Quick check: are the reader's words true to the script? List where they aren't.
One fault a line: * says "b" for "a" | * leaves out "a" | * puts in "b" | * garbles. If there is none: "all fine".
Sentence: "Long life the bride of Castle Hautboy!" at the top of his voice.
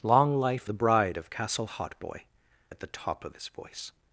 all fine